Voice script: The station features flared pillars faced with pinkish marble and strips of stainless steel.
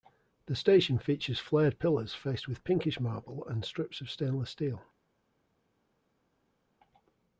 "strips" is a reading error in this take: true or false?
false